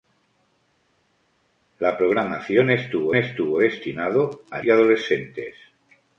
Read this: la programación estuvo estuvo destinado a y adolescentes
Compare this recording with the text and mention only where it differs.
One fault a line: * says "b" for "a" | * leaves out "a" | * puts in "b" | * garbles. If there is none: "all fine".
all fine